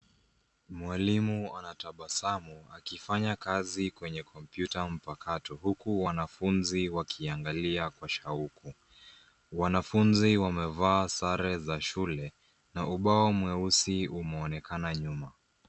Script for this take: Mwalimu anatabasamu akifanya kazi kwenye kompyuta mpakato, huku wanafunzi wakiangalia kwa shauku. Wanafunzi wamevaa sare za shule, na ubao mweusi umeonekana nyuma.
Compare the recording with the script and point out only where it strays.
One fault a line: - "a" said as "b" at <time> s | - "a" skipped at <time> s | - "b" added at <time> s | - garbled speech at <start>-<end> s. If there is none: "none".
none